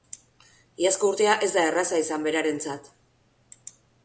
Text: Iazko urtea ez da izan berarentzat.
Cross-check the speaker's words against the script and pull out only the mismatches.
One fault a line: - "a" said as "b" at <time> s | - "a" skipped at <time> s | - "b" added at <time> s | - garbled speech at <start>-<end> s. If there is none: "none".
- "erraza" added at 1.7 s